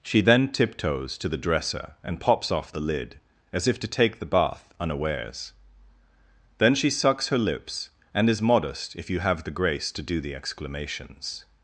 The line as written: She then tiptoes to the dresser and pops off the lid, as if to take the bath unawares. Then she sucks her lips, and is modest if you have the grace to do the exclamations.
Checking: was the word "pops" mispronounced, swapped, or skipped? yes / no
no